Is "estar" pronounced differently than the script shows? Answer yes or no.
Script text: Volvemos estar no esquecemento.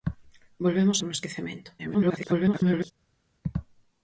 yes